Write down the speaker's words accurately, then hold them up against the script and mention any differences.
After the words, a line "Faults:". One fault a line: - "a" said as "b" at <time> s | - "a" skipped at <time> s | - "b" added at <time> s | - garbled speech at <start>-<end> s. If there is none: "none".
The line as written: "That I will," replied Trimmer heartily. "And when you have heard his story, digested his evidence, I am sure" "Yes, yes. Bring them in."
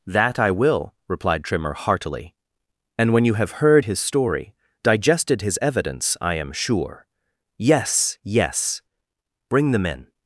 "That I will," replied Trimmer heartily. "And when you have heard his story, digested his evidence, I am sure" "Yes, yes. Bring them in."
Faults:
none